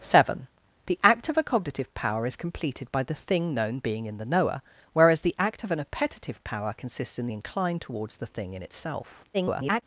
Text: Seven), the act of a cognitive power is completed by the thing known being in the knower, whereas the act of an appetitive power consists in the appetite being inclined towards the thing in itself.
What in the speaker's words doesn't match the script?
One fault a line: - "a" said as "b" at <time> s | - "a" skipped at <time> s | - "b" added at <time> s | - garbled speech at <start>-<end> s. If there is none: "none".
- "the appetite being" skipped at 7.3 s
- garbled speech at 9.3-9.8 s